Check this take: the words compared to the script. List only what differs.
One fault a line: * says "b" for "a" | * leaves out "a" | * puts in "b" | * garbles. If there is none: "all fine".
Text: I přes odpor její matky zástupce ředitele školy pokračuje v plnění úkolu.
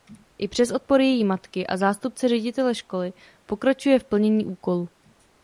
* puts in "a"